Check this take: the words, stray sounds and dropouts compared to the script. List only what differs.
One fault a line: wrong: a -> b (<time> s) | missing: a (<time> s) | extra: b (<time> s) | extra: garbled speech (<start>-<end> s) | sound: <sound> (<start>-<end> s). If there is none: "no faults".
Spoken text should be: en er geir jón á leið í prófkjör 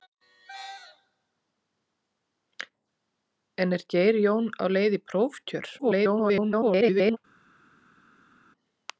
extra: garbled speech (5.8-7.2 s)